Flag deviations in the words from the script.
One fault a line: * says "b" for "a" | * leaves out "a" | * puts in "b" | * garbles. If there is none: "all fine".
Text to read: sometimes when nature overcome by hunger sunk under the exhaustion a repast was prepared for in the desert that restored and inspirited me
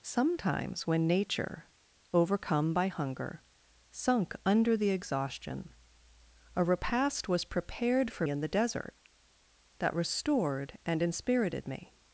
all fine